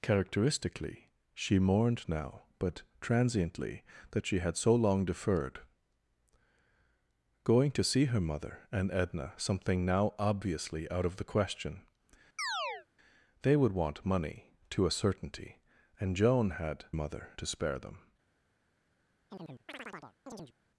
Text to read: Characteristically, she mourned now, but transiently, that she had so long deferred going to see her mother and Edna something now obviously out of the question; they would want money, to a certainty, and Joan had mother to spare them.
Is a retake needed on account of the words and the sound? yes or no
yes